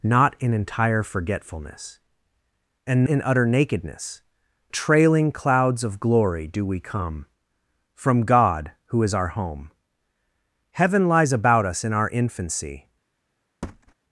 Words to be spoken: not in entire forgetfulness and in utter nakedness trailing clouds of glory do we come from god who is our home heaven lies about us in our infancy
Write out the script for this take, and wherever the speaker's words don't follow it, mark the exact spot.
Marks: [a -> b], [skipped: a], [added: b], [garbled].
not in entire forgetfulness and in utter nakedness trailing clouds of glory do we come from god who is our home heaven lies about us in our infancy